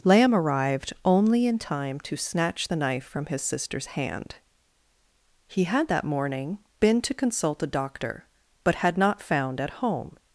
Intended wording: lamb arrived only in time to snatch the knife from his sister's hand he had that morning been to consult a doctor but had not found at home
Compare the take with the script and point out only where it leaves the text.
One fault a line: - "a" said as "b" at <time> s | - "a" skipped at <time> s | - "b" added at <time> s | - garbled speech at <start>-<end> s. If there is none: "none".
none